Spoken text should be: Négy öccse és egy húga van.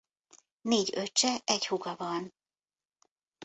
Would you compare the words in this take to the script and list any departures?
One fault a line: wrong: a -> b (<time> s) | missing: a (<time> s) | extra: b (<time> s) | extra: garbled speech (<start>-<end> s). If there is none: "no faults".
missing: és (1.4 s)